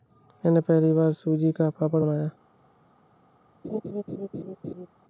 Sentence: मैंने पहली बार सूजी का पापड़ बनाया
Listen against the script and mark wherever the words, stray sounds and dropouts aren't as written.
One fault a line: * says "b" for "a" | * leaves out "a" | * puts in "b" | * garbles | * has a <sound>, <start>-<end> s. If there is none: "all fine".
* has a laugh, 3.6-4.9 s